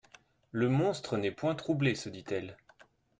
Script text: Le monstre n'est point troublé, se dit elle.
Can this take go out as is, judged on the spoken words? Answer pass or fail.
pass